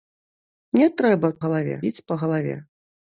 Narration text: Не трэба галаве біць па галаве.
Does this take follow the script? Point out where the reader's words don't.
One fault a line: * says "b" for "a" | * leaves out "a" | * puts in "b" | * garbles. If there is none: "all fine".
all fine